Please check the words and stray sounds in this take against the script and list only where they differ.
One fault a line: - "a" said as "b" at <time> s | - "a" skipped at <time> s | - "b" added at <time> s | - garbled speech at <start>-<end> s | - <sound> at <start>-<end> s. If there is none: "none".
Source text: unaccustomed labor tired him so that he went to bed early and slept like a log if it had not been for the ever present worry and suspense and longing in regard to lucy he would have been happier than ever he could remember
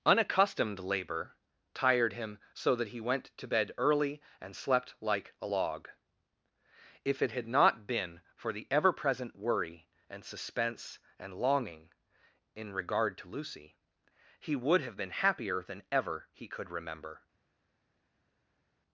none